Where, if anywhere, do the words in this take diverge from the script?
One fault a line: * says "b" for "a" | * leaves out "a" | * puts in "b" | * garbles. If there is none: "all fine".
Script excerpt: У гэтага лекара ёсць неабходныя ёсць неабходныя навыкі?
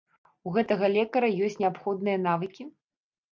* leaves out "ёсць неабходныя"